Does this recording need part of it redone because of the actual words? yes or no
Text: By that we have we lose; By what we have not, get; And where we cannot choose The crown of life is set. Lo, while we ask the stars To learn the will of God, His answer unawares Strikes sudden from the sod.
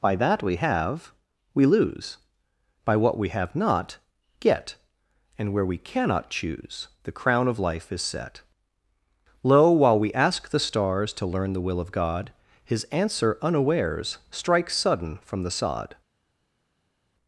no